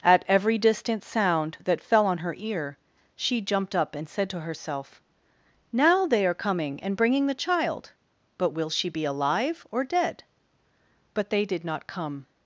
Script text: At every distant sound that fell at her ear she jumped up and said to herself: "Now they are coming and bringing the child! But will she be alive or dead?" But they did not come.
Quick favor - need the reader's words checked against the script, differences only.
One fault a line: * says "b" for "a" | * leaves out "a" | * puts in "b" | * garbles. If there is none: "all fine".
* says "on" for "at"